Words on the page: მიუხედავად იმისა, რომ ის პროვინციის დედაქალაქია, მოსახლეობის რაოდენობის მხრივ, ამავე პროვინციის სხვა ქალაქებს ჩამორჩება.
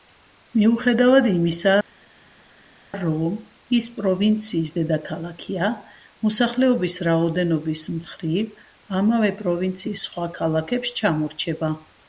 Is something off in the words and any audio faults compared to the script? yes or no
no